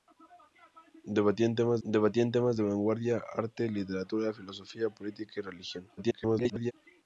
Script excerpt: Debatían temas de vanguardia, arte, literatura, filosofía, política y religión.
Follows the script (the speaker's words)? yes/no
no